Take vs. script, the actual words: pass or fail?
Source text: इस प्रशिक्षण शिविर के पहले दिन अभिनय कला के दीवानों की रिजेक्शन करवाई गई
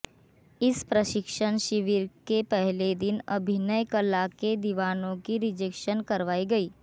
pass